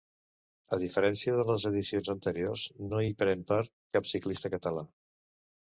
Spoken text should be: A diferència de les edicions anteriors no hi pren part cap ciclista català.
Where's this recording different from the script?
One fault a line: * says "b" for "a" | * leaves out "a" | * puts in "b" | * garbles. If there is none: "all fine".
all fine